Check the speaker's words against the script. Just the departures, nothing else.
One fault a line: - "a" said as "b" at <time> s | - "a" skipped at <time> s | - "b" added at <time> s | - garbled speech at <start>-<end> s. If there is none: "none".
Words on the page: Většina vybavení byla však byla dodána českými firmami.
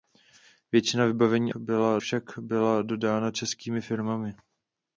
none